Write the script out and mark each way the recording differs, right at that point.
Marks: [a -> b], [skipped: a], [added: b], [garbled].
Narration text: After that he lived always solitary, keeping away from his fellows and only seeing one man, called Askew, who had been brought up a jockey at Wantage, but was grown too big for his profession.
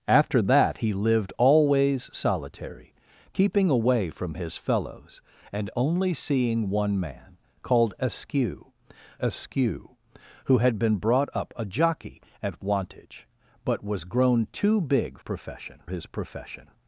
After that he lived always solitary, keeping away from his fellows and only seeing one man, called Askew, [added: Askew] who had been brought up a jockey at Wantage, but was grown too big [for -> profession] his profession.